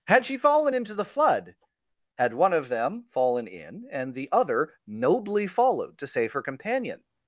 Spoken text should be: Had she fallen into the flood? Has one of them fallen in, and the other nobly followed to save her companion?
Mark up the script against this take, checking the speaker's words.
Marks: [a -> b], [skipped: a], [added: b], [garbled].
Had she fallen into the flood? [Has -> Had] one of them fallen in, and the other nobly followed to save her companion?